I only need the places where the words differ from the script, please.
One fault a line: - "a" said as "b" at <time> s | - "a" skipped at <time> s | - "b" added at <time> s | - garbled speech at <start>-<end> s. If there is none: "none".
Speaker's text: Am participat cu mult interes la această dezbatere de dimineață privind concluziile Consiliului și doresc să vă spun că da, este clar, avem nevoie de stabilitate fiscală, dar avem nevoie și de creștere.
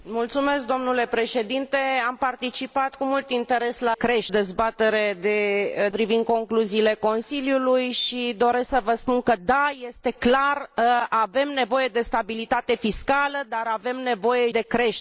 - "această" said as "creștere" at 3.9 s
- "dimineață" skipped at 5.9 s
- "și" skipped at 14.5 s